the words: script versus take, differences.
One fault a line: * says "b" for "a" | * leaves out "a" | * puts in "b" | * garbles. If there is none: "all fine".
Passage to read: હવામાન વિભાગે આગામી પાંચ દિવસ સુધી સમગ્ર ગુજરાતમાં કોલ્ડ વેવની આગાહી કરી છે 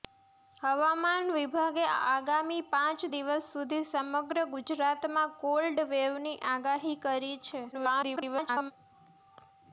* garbles